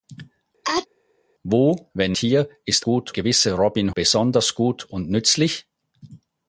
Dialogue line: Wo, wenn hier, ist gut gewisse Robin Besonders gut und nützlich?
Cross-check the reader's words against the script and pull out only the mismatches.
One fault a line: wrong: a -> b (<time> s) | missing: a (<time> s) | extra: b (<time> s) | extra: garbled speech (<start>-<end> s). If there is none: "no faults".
no faults